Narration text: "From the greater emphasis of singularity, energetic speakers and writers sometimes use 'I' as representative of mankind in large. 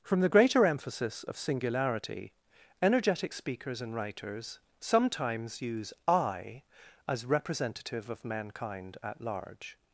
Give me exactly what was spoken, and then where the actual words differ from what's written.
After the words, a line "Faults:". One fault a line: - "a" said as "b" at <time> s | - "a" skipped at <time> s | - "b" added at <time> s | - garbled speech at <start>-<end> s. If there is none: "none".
"From the greater emphasis of singularity, energetic speakers and writers sometimes use 'I' as representative of mankind at large.
Faults:
- "in" said as "at" at 9.0 s